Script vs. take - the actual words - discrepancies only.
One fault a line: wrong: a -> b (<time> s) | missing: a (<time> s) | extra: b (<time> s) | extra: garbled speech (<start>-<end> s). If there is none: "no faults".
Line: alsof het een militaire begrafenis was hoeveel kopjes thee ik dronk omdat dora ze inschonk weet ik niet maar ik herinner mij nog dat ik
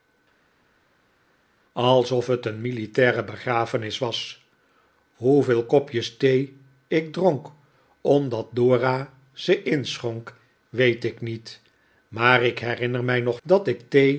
no faults